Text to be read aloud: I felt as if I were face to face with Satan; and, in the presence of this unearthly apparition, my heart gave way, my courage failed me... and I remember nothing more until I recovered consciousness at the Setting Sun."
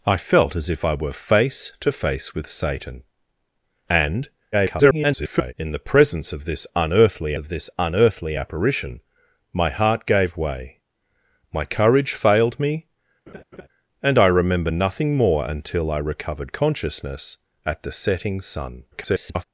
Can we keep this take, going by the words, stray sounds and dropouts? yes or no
no